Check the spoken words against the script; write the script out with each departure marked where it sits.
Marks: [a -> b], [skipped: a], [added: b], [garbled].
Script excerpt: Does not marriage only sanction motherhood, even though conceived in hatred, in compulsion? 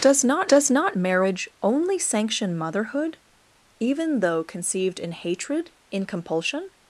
Does not [added: does not] marriage only sanction motherhood, even though conceived in hatred, in compulsion?